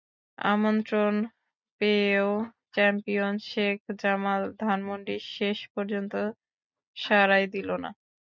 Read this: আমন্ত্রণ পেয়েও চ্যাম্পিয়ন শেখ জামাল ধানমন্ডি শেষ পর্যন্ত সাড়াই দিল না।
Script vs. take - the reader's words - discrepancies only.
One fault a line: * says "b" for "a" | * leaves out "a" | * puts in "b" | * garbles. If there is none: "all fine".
all fine